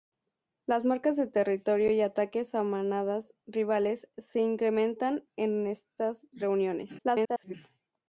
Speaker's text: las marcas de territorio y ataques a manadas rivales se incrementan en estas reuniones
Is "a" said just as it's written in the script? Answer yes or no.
yes